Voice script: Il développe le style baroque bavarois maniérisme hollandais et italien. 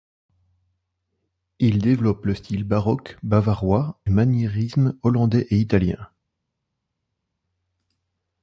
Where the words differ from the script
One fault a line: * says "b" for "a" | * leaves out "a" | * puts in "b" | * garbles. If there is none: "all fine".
all fine